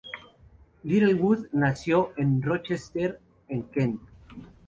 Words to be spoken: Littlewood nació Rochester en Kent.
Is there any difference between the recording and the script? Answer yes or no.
yes